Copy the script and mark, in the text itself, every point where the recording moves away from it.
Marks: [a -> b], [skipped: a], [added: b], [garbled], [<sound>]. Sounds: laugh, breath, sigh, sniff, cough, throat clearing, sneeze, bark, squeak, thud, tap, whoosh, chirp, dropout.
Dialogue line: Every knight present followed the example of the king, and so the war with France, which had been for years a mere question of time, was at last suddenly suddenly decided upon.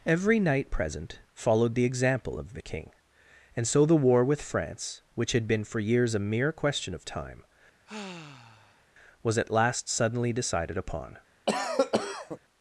Every knight present followed the example of the king, and so the war with France, which had been for years a mere question of time, [sigh] was at last suddenly [skipped: suddenly] decided upon. [cough]